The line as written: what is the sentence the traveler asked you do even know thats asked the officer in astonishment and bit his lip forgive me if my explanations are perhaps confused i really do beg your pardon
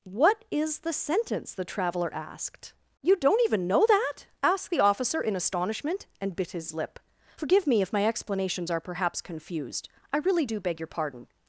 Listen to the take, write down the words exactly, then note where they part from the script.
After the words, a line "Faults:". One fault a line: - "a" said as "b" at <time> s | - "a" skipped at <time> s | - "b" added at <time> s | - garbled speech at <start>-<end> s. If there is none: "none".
what is the sentence the traveler asked you don't even know that asked the officer in astonishment and bit his lip forgive me if my explanations are perhaps confused i really do beg your pardon
Faults:
- "do" said as "don't" at 3.1 s
- "thats" said as "that" at 3.9 s